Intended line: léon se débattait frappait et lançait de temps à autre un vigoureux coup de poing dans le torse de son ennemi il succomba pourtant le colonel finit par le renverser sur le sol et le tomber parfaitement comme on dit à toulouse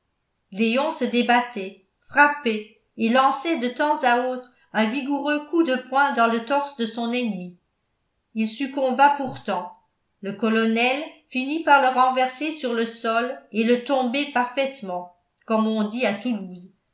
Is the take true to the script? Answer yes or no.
yes